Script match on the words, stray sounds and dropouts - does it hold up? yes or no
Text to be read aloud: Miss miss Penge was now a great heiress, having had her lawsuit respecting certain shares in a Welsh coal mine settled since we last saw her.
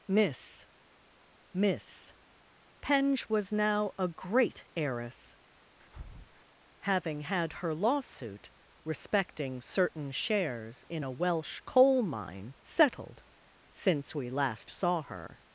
no